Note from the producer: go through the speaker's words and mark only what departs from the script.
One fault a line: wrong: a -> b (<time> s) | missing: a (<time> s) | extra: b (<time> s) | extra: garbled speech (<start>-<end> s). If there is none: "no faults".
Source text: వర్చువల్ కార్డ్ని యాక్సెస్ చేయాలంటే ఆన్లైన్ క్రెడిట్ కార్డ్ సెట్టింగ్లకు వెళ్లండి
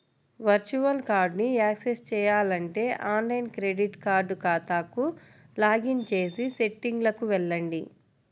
extra: ఖాతాకు లాగిన్ చేసి (4.4 s)